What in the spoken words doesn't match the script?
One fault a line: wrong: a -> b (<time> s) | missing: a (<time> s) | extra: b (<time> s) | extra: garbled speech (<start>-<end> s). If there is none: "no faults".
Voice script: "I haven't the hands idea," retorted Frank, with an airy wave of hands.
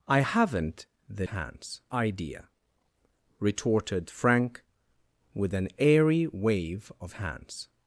no faults